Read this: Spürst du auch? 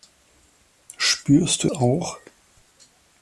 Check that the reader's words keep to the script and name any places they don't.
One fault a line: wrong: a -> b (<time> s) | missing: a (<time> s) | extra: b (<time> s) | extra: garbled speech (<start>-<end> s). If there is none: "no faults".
no faults